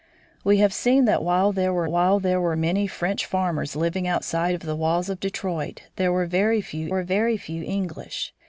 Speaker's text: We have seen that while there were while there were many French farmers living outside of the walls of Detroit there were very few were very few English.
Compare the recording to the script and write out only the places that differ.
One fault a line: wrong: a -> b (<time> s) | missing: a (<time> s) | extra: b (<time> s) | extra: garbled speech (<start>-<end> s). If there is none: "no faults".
no faults